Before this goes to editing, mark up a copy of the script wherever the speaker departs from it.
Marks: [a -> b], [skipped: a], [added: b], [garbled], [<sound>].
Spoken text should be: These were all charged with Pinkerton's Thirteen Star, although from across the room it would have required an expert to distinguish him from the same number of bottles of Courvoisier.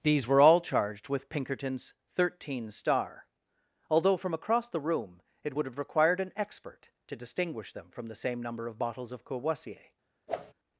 These were all charged with Pinkerton's Thirteen Star, although from across the room it would have required an expert to distinguish [him -> them] from the same number of bottles of Courvoisier. [whoosh]